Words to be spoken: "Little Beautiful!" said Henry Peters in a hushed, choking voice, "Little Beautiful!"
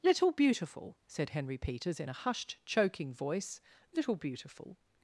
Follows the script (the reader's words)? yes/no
yes